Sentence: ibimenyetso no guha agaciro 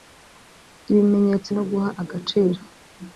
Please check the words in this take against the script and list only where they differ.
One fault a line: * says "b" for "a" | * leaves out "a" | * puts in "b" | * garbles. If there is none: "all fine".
all fine